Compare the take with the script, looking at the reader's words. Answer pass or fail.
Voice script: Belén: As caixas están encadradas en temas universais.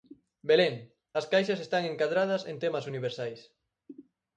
pass